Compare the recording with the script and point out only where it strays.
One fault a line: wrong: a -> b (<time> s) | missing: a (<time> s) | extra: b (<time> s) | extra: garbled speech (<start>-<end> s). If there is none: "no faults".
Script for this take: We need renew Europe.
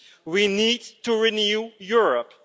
extra: to (1.0 s)